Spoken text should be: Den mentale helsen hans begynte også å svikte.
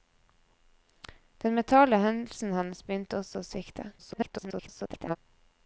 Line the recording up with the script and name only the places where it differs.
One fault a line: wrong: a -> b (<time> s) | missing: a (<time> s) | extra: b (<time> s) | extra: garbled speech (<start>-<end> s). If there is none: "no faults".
extra: garbled speech (4.0-5.2 s)